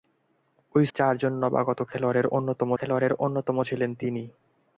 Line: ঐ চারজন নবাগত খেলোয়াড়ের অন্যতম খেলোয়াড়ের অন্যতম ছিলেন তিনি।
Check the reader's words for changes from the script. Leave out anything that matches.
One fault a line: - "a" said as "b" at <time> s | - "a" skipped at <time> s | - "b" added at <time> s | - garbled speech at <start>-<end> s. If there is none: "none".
none